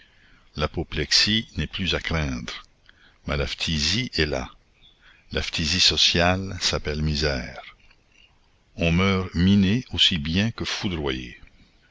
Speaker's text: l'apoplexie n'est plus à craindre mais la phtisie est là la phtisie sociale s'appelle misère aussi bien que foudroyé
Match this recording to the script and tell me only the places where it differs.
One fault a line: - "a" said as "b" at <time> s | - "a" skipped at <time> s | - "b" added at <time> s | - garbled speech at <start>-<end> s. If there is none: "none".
- "on meurt miné" added at 8.7 s